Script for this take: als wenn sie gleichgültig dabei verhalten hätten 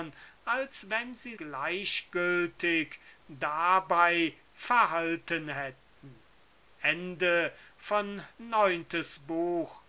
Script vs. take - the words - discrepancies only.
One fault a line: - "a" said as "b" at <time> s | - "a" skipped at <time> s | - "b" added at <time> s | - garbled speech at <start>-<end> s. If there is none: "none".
none